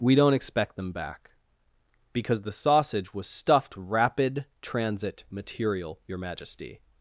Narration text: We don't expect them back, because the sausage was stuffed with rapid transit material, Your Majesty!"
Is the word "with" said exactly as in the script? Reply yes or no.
no